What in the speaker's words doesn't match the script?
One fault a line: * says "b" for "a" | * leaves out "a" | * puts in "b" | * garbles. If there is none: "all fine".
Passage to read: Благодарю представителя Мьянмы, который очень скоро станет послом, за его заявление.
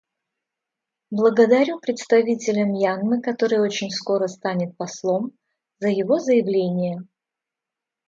all fine